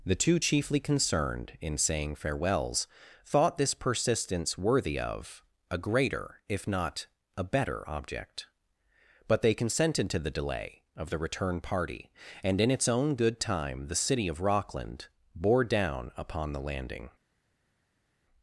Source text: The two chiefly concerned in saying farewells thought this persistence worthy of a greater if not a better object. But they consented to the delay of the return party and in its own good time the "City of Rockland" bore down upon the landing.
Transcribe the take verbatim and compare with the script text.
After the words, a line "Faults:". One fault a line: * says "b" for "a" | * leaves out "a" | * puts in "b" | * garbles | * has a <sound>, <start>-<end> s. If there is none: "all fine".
The two chiefly concerned in saying farewells thought this persistence worthy of a greater if not a better object. But they consented to the delay of the return party and in its own good time the "City of Rockland" bore down upon the landing.
Faults:
all fine